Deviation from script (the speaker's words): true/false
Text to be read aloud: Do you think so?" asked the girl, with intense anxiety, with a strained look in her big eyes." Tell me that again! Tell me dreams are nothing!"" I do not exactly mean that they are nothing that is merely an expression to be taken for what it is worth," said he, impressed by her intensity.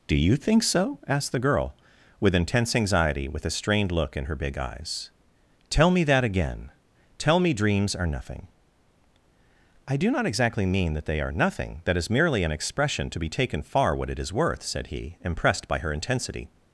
true